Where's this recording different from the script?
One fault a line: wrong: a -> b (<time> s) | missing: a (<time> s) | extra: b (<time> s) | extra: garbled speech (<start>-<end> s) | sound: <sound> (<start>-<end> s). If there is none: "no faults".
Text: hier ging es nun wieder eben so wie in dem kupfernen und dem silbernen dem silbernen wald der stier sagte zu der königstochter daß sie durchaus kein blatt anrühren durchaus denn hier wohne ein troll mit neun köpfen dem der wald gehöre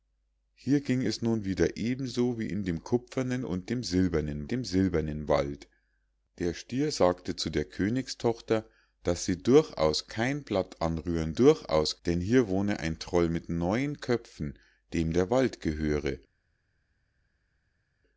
no faults